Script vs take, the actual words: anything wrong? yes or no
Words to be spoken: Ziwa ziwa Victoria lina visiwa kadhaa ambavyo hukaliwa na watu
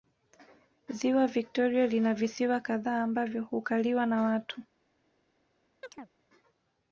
yes